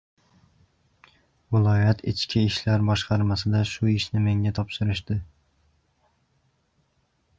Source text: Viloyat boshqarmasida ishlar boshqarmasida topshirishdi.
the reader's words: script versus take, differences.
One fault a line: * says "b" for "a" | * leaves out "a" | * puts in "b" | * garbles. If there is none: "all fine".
* says "ichki" for "boshqarmasida"
* puts in "shu ishni menga"